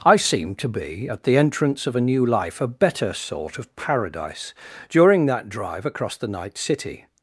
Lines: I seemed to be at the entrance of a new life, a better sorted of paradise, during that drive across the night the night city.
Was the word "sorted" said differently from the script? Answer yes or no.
yes